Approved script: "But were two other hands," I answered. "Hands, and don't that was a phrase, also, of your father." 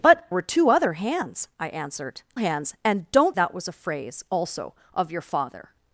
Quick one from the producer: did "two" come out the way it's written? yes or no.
yes